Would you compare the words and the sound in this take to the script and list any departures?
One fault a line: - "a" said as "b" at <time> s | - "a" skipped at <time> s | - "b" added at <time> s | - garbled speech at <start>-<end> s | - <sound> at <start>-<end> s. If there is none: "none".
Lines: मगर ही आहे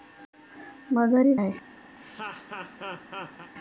- laugh at 2.0-3.5 s